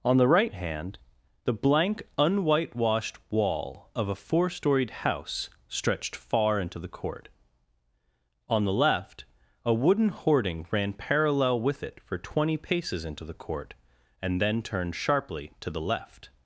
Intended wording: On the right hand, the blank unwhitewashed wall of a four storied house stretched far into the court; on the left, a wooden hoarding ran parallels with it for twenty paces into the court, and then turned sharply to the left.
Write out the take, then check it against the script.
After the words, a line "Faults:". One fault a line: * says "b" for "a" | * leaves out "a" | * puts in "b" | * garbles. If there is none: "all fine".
On the right hand, the blank unwhitewashed wall of a four storied house stretched far into the court; on the left, a wooden hoarding ran parallel with it for twenty paces into the court, and then turned sharply to the left.
Faults:
* says "parallel" for "parallels"